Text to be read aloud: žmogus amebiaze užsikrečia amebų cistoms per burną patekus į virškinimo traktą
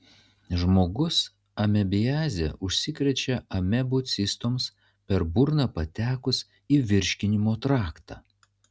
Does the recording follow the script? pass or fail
pass